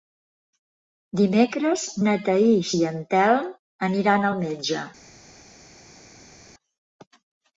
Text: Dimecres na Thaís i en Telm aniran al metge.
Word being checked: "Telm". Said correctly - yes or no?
yes